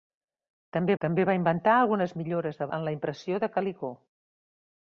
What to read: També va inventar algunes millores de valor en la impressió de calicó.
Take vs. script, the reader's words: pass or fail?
fail